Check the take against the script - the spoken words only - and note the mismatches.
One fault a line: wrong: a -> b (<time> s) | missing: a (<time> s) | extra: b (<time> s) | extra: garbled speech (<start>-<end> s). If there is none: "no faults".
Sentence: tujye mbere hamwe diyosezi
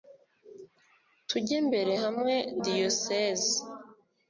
no faults